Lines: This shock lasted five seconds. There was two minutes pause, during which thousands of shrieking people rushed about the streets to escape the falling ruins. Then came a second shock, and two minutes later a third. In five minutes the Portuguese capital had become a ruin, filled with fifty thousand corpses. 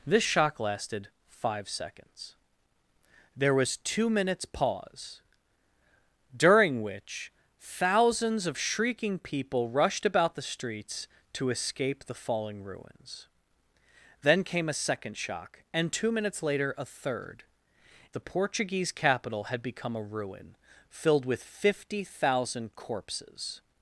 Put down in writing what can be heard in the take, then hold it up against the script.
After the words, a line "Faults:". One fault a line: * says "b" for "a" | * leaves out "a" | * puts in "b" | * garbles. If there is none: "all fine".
This shock lasted five seconds. There was two minutes pause, during which thousands of shrieking people rushed about the streets to escape the falling ruins. Then came a second shock, and two minutes later a third. The Portuguese capital had become a ruin, filled with fifty thousand corpses.
Faults:
* leaves out "In five minutes"